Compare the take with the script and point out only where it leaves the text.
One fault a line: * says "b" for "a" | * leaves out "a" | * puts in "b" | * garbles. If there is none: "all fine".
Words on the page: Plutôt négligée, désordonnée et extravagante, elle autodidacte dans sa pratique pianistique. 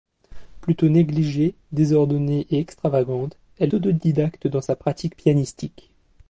all fine